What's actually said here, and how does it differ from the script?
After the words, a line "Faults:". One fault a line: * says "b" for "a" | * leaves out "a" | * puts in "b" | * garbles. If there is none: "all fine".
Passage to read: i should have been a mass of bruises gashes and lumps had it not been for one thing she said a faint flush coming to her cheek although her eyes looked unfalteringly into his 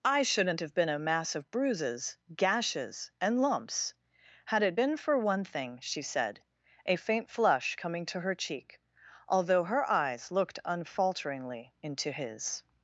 i shouldn't have been a mass of bruises gashes and lumps had it been for one thing she said a faint flush coming to her cheek although her eyes looked unfalteringly into his
Faults:
* says "shouldn't" for "should"
* leaves out "not"